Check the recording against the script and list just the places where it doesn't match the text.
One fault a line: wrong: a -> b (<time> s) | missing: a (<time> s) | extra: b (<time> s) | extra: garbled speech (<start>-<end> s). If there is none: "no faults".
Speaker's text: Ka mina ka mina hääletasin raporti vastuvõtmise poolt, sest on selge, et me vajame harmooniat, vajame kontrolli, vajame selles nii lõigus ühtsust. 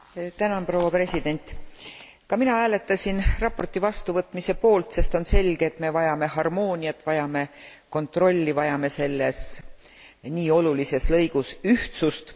missing: ka mina (2.5 s)
extra: olulises (10.5 s)